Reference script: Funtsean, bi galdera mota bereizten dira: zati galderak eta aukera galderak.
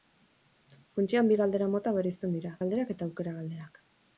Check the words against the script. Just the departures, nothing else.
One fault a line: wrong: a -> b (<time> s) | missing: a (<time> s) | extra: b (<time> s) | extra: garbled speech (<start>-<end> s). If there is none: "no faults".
missing: zati (2.6 s)